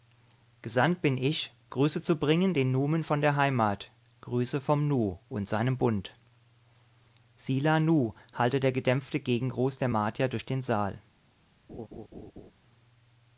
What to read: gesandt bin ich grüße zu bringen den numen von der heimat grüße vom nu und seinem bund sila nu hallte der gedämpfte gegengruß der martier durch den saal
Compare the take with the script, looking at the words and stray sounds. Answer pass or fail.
fail